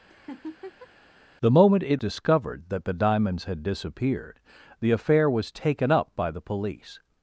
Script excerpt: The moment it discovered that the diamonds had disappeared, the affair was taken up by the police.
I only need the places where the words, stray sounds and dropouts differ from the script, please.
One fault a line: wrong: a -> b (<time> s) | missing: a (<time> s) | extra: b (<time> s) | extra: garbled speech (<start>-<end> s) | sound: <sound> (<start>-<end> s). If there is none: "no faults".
sound: laugh (0.1-0.9 s)